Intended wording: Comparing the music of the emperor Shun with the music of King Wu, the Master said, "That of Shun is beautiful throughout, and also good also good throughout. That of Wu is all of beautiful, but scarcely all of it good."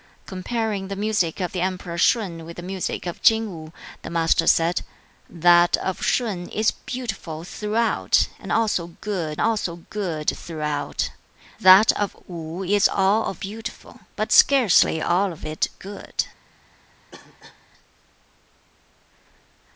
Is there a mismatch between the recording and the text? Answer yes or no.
no